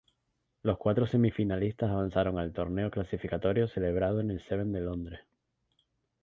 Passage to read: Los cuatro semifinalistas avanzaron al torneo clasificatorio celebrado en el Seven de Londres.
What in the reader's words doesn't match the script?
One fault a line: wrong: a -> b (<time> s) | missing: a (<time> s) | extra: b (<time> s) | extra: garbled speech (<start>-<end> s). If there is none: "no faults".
no faults